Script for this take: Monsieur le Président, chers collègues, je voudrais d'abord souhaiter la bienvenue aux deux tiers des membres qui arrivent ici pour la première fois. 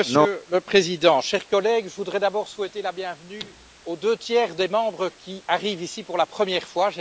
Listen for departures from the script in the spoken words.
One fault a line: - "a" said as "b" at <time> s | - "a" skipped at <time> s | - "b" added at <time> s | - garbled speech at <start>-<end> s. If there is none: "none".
none